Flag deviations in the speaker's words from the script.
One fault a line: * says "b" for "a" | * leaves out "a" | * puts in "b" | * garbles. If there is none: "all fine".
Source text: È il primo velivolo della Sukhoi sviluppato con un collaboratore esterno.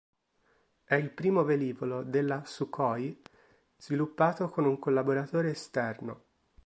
all fine